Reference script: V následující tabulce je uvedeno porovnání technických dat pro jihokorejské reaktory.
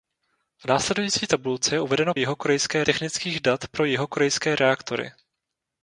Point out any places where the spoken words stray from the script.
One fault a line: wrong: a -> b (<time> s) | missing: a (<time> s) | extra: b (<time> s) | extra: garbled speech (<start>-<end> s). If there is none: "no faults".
wrong: porovnání -> jihokorejské (2.1 s)